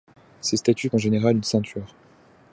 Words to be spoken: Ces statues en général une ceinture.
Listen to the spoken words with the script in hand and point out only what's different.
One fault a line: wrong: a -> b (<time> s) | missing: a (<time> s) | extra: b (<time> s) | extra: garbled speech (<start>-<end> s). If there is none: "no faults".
no faults